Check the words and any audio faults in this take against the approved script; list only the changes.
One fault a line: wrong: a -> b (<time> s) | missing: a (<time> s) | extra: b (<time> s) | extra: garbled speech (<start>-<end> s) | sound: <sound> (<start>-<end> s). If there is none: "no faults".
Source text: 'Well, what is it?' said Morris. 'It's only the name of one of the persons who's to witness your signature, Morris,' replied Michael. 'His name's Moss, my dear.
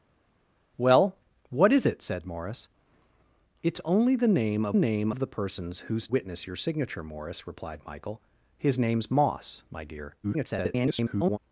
wrong: one -> name (4.7 s)
missing: to (6.1 s)
extra: garbled speech (10.2-11.4 s)